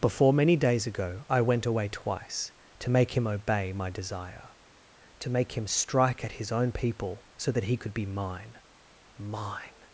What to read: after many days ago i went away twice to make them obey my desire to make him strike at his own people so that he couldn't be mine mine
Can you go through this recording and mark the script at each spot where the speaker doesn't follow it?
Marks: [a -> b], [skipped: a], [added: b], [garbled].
[after -> before] many days ago i went away twice to make [them -> him] obey my desire to make him strike at his own people so that he [couldn't -> could] be mine mine